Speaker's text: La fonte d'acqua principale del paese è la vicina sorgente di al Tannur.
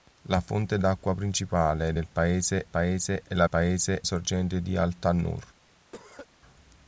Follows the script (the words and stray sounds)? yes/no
no